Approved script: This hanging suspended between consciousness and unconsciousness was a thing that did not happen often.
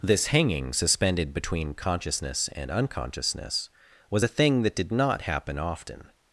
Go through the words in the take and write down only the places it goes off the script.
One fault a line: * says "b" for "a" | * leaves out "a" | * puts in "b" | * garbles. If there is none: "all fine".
all fine